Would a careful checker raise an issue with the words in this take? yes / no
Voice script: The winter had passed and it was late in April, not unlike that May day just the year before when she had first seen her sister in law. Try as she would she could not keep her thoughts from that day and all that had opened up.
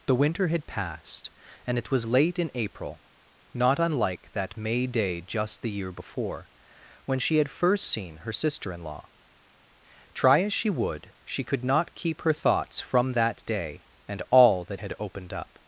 no